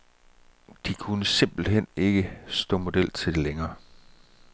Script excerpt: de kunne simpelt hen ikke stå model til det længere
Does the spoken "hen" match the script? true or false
true